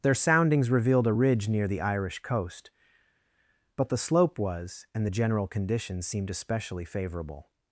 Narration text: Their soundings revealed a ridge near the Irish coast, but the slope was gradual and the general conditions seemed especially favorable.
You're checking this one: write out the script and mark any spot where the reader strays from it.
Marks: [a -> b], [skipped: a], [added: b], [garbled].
Their soundings revealed a ridge near the Irish coast, but the slope was [skipped: gradual] and the general conditions seemed especially favorable.